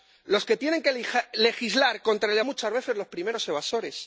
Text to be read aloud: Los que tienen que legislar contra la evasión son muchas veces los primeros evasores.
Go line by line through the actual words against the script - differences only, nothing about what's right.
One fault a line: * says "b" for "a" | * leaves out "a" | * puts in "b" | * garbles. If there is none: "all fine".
* leaves out "evasión son"